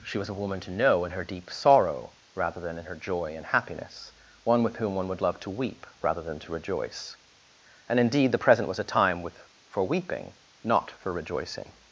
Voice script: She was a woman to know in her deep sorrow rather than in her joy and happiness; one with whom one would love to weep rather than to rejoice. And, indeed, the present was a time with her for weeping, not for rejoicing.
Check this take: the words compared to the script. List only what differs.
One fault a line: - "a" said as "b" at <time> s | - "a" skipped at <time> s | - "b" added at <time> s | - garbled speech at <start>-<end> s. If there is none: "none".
- "her" skipped at 9.4 s